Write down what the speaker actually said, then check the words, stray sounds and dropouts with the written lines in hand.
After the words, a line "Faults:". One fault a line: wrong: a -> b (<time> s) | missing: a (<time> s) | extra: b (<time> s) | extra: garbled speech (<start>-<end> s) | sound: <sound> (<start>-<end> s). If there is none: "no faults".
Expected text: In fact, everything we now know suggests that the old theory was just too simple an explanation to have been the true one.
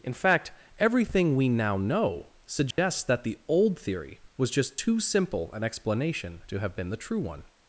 In fact, everything we now know suggests that the old theory was just too simple an explanation to have been the true one.
Faults:
sound: dropout (2.7-2.8 s)